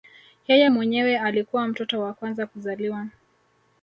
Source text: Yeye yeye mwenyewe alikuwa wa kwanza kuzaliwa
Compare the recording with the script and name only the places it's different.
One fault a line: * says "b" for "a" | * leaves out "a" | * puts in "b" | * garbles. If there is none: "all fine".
* leaves out "yeye"
* puts in "mtoto"